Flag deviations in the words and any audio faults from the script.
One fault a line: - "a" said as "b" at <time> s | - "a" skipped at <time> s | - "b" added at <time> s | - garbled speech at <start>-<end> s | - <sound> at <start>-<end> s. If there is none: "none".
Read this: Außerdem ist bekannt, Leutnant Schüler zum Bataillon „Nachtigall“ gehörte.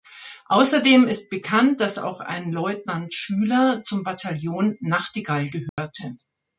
- "dass auch ein" added at 1.8 s
- dropout at 5.7-5.8 s